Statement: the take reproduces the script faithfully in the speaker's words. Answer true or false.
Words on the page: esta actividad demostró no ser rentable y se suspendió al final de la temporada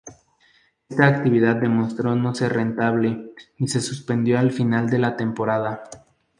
true